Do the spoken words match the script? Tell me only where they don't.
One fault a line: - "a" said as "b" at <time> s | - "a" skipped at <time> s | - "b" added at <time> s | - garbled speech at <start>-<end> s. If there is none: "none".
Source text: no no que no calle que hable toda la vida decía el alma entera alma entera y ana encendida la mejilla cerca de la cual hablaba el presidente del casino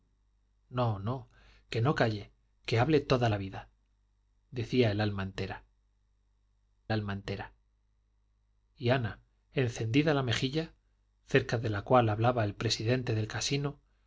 none